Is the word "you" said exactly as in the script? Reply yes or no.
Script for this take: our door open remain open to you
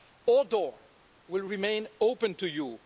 yes